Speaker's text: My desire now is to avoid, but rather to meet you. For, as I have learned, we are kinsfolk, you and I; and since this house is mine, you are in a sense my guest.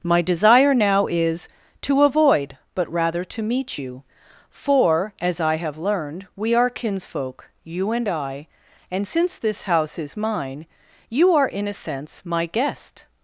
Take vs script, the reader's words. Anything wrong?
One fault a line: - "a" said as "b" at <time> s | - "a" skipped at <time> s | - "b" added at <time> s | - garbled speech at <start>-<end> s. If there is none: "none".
none